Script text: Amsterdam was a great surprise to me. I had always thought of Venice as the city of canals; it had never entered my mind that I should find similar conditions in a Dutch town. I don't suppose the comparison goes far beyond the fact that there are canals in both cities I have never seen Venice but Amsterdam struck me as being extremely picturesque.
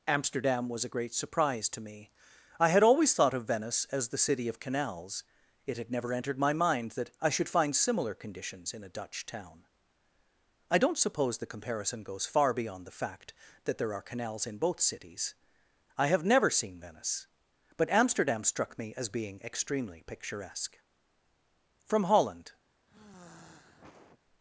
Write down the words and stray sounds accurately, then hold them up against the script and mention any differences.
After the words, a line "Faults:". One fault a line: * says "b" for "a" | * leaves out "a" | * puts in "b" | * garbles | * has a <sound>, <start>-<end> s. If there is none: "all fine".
Amsterdam was a great surprise to me. I had always thought of Venice as the city of canals; it had never entered my mind that I should find similar conditions in a Dutch town. I don't suppose the comparison goes far beyond the fact that there are canals in both cities I have never seen Venice but Amsterdam struck me as being extremely picturesque. From Holland
Faults:
* puts in "From Holland"
* has a sigh, 22.9-24.2 s